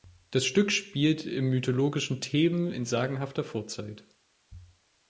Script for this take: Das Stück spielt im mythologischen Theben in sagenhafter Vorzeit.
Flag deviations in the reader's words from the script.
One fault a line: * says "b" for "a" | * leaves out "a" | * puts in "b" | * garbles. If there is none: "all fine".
all fine